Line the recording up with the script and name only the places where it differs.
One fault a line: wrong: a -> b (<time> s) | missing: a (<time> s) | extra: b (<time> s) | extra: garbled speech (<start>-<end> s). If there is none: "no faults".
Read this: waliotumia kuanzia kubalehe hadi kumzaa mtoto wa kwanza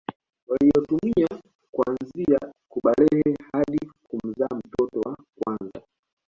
no faults